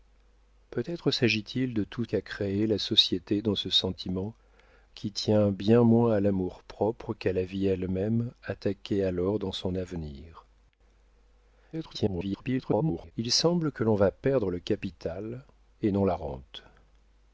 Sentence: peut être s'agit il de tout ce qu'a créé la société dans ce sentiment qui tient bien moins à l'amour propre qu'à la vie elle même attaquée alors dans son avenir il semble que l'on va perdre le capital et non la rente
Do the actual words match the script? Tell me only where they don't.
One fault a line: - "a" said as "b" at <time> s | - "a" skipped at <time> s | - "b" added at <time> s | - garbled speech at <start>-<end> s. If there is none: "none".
- "ce" skipped at 2.0 s
- garbled speech at 11.7-13.1 s